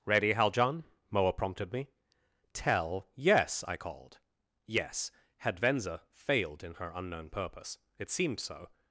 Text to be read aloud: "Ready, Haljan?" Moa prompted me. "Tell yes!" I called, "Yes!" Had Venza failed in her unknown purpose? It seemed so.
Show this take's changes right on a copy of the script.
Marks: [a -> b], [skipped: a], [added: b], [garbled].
"Ready, Haljan?" Moa prompted me. "Tell yes!" I called, "Yes!" Had Venza failed in her unknown purpose? It seemed so.